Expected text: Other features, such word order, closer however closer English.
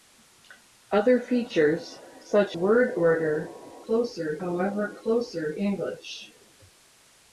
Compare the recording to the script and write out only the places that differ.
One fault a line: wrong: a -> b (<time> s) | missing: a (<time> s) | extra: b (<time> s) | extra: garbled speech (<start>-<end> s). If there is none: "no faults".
no faults